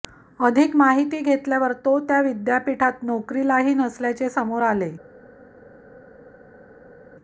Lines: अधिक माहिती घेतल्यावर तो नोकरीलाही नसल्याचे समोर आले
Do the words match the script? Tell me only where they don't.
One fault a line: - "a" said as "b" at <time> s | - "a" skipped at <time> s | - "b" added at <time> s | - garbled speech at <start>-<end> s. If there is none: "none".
- "त्या विद्यापीठात" added at 2.0 s